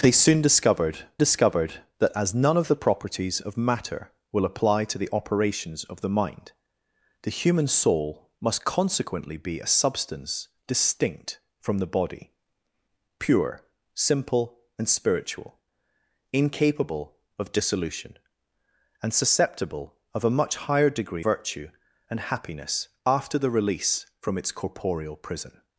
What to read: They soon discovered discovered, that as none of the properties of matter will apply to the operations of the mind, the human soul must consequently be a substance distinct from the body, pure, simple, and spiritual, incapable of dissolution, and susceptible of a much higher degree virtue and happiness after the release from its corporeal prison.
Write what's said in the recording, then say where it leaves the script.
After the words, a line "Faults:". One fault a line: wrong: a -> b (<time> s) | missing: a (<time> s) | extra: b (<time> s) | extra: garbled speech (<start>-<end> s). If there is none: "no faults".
They soon discovered discovered, that as none of the properties of matter will apply to the operations of the mind, the human soul must consequently be a substance distinct from the body, pure, simple, and spiritual, incapable of dissolution, and susceptible of a much higher degree virtue and happiness after the release from its corporeal prison.
Faults:
no faults